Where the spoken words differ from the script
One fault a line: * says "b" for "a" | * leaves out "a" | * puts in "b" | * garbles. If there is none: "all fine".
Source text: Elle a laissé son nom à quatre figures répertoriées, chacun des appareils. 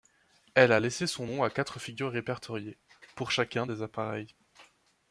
* puts in "pour"